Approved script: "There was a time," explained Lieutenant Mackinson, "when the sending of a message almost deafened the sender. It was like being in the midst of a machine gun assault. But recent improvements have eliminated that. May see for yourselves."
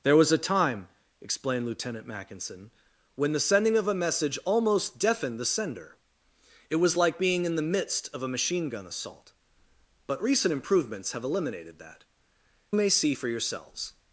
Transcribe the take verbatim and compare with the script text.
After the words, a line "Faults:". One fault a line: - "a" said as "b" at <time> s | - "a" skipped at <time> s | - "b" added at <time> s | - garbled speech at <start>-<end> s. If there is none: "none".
"There was a time," explained Lieutenant Mackinson, "when the sending of a message almost deafened the sender. It was like being in the midst of a machine gun assault. But recent improvements have eliminated that. May see for yourselves."
Faults:
none